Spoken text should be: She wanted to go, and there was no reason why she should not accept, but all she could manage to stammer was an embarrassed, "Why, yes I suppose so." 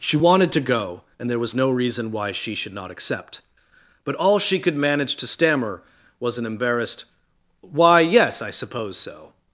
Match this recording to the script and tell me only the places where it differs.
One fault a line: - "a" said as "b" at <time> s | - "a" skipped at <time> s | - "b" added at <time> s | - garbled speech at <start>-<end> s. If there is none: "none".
none